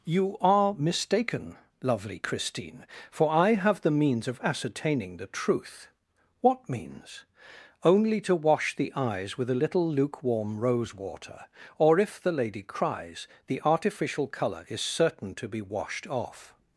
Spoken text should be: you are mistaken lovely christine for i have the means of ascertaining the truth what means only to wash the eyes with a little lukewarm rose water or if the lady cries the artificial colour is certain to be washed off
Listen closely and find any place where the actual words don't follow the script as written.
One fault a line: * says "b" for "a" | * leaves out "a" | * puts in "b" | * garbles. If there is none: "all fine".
all fine